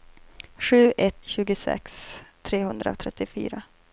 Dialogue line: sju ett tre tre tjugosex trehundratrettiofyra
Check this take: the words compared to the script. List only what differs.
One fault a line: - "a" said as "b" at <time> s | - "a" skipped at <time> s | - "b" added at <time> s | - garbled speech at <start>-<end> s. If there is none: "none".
- "tre tre" skipped at 1.2 s